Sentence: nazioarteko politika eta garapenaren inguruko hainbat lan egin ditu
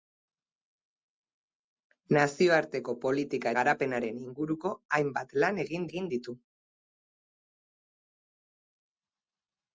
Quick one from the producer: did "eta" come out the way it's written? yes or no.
no